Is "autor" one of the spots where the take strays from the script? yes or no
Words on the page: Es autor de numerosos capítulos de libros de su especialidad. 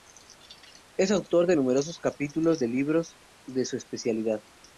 no